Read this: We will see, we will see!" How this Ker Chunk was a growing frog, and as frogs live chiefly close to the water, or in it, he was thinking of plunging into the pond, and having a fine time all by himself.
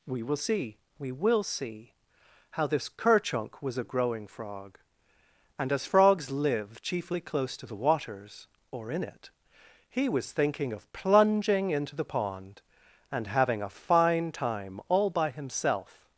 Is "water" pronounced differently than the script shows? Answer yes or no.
yes